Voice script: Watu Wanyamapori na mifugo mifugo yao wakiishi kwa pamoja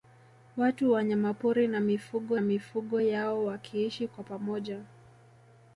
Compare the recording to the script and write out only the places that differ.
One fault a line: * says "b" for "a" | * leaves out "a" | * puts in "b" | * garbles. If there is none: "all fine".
all fine